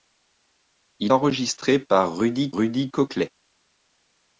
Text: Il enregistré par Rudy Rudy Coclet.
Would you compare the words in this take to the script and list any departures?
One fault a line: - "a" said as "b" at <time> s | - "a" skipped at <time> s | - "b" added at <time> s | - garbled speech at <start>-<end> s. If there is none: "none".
none